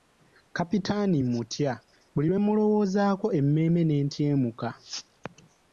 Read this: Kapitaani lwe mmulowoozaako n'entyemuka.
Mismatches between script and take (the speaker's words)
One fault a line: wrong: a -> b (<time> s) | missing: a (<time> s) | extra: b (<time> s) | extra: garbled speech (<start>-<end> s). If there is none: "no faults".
extra: mmutya buli (1.2 s)
extra: emmeeme (3.4 s)